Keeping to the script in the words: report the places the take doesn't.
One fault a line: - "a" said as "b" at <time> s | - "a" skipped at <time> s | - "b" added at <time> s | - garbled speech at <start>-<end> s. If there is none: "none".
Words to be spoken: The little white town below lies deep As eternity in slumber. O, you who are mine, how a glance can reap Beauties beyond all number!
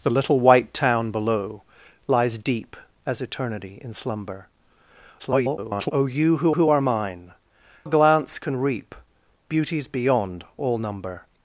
- garbled speech at 5.2-5.9 s
- "who" added at 6.5 s
- "how" skipped at 7.3 s